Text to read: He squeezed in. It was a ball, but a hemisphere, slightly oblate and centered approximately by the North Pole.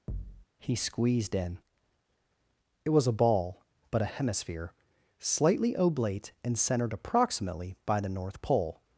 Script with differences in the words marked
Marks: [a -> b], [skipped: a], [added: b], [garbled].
He squeezed in. It was a ball, but a hemisphere, slightly oblate and centered approximately by the North Pole.